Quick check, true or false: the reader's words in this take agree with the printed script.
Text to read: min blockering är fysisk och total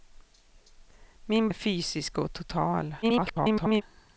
false